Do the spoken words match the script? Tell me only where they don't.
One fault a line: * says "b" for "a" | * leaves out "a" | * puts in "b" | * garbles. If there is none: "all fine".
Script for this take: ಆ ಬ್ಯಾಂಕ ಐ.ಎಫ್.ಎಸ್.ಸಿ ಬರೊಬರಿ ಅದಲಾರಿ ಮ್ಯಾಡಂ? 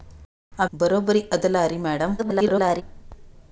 * leaves out "ಬ್ಯಾಂಕ ಐ.ಎಫ್.ಎಸ್.ಸಿ"
* garbles